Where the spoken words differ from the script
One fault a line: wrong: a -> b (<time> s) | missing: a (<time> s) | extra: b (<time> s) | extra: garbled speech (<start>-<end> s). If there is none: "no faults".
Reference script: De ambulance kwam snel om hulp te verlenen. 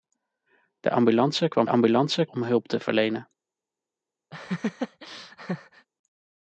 wrong: snel -> ambulance (1.7 s)